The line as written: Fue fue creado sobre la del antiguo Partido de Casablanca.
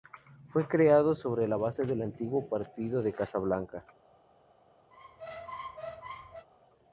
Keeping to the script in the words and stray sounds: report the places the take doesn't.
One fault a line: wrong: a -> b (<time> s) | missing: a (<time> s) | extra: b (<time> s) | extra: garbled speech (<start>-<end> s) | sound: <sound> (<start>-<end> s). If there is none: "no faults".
missing: fue (0.7 s)
extra: base (1.6 s)
sound: squeak (4.9-6.5 s)